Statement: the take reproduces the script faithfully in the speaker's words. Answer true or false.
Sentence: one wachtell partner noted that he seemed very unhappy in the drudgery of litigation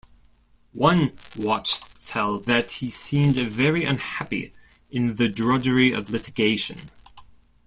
false